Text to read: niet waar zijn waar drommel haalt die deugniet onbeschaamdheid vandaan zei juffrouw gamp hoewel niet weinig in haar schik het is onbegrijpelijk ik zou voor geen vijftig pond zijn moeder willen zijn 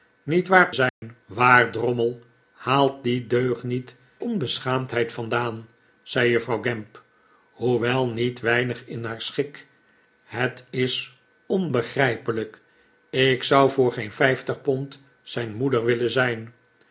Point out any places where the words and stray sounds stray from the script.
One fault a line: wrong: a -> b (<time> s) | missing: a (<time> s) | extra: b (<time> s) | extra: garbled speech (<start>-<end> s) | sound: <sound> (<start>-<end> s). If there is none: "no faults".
sound: dropout (0.9-1.0 s)